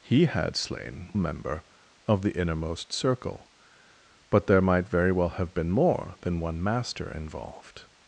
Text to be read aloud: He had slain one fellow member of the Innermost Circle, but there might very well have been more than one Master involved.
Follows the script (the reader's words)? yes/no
no